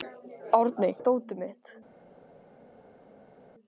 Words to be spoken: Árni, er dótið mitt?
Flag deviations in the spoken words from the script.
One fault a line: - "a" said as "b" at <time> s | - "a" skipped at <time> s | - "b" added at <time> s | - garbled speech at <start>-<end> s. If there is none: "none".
none